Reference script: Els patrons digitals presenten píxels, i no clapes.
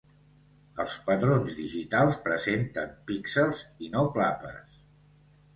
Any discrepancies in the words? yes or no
no